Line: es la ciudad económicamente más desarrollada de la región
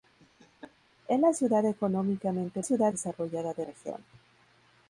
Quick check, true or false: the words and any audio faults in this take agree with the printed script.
false